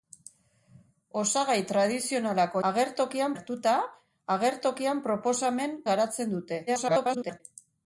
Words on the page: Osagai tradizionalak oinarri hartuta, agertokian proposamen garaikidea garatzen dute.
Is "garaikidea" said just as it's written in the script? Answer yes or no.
no